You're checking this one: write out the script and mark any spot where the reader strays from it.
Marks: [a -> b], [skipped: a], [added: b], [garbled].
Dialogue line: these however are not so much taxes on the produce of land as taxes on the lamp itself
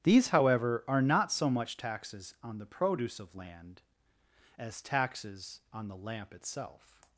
these however are not so much taxes on the produce of land as taxes on the lamp itself